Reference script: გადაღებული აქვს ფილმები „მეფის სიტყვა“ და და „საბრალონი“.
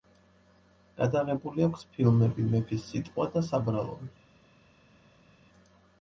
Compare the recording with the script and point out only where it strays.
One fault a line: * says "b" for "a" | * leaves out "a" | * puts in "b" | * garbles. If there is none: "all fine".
* leaves out "და"